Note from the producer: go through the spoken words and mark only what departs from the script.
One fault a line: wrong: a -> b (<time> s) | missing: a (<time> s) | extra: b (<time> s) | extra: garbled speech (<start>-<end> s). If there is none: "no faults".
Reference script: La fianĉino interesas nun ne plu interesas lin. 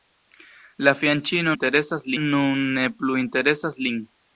no faults